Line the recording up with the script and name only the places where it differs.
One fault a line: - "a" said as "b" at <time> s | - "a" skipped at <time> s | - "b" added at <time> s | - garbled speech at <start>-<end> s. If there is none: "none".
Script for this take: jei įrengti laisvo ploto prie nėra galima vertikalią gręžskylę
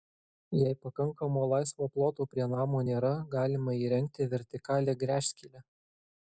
- "įrengti" said as "pakankamo" at 0.8 s
- "namo" added at 2.5 s
- "įrengti" added at 3.9 s